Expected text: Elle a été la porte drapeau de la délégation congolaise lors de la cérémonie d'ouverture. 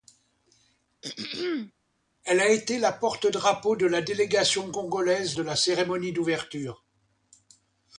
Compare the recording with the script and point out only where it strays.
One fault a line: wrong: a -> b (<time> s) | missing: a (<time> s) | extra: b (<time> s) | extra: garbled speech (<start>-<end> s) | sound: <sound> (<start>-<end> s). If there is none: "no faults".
sound: throat clearing (1.0-1.7 s)
missing: lors (5.4 s)